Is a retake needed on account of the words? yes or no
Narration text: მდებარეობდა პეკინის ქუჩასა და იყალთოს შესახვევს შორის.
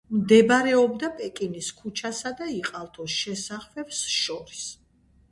no